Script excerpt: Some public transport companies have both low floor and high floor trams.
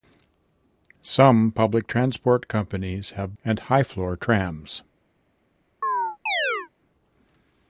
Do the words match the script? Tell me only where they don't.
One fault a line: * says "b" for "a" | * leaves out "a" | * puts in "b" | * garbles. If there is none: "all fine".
* leaves out "both low floor"